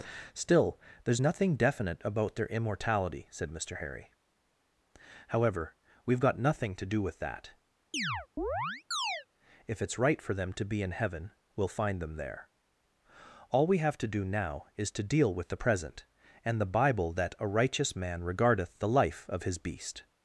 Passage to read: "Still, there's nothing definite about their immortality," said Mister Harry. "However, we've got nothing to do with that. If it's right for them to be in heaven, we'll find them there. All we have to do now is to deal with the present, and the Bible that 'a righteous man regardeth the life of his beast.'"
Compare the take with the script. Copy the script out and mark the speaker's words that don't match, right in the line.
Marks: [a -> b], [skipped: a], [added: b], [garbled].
"Still, there's nothing definite about their immortality," said Mister Harry. "However, we've got nothing to do with that. If it's right for them to be in heaven, we'll find them there. All we have to do now is to deal with the present, and the Bible that 'a righteous man regardeth the life of his beast.'"